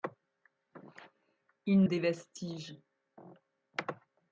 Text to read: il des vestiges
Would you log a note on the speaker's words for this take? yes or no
no